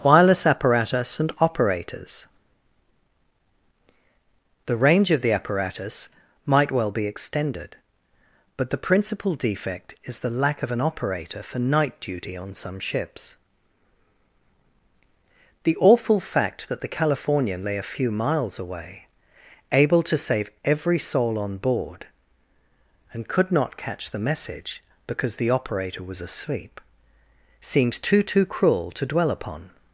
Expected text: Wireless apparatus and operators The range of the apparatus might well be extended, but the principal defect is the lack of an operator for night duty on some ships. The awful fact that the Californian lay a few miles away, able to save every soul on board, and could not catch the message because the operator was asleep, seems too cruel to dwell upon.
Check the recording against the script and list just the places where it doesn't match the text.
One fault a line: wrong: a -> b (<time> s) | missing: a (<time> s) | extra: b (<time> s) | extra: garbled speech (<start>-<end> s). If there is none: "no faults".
extra: too (28.2 s)